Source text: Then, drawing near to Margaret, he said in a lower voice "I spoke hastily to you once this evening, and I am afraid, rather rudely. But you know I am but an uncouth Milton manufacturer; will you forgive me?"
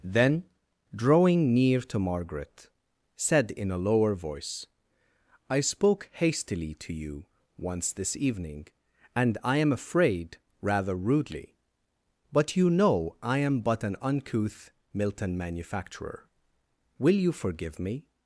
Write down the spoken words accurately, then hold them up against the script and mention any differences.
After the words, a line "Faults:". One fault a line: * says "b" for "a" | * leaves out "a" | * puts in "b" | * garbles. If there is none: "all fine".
Then, drawing near to Margaret, said in a lower voice "I spoke hastily to you once this evening, and I am afraid, rather rudely. But you know I am but an uncouth Milton manufacturer; will you forgive me?"
Faults:
* leaves out "he"